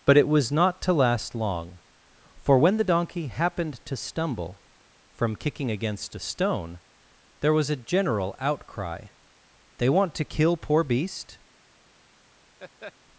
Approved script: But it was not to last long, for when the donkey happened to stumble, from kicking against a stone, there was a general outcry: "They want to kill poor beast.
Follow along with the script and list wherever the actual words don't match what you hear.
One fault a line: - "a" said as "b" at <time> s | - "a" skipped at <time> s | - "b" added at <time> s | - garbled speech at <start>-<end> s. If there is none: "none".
none